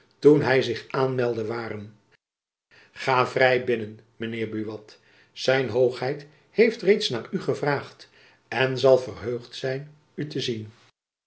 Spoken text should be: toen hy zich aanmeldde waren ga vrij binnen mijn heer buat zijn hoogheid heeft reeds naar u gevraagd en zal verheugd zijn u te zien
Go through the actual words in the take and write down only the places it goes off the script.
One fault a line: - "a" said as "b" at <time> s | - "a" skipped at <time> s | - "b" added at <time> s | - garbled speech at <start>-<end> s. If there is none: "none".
none